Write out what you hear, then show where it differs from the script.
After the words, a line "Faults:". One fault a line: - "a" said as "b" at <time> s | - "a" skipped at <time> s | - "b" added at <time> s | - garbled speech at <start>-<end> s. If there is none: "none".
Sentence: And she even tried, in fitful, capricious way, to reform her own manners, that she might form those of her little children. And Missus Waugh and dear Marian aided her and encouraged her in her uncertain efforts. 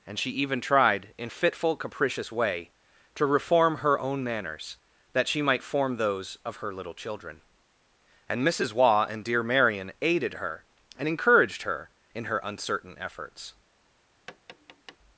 And she even tried, in fitful, capricious way, to reform her own manners, that she might form those of her little children. And Missus Waugh and dear Marian aided her and encouraged her in her uncertain efforts.
Faults:
none